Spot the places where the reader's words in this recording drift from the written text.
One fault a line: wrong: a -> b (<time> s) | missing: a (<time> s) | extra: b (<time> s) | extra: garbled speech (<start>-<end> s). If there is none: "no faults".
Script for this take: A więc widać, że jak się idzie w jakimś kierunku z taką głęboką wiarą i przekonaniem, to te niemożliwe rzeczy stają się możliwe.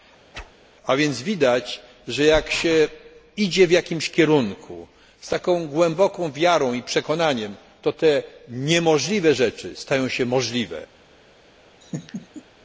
no faults